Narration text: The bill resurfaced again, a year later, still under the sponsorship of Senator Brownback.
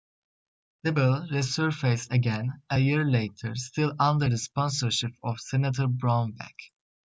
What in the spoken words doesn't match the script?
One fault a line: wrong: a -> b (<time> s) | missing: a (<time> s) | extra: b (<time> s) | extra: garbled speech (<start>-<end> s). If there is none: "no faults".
no faults